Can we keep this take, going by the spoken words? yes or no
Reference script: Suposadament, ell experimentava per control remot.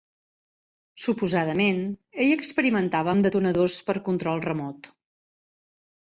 no